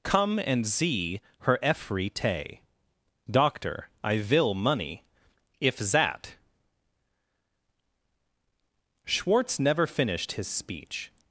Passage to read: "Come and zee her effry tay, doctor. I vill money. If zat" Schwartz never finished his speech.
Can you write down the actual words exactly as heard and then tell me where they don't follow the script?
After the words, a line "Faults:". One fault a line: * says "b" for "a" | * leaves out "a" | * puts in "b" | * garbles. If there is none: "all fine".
"Come and zee her effry tay, doctor. I vill money. If zat" Schwartz never finished his speech.
Faults:
all fine